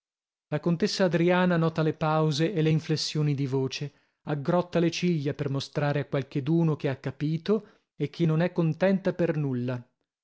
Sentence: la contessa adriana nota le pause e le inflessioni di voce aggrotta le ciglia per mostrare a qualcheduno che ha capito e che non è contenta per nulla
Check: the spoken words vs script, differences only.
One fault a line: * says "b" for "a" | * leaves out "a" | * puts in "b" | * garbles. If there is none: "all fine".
all fine